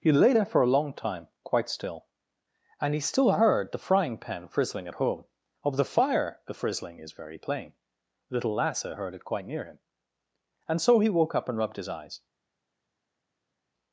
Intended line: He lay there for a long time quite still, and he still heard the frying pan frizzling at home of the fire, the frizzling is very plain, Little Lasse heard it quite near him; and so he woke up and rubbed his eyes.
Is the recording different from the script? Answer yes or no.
no